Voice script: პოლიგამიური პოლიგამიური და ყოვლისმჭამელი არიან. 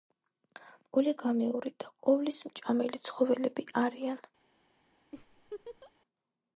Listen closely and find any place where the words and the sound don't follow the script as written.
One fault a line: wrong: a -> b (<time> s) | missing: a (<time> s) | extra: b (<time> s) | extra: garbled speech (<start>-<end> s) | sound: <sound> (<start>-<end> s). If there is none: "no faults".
missing: პოლიგამიური (1.7 s)
extra: ცხოველები (3.1 s)
sound: laugh (5.1-5.9 s)